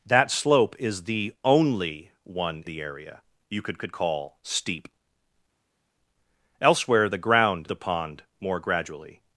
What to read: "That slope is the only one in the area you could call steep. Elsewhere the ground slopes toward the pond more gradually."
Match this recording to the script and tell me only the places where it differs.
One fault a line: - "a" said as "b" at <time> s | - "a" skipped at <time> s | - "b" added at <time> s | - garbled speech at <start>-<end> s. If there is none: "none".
- "in" skipped at 2.6 s
- "could" added at 3.8 s
- "slopes toward" skipped at 7.7 s